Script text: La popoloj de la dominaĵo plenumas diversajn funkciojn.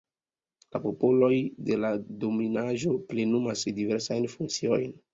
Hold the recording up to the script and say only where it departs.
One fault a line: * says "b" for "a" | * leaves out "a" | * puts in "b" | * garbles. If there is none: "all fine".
all fine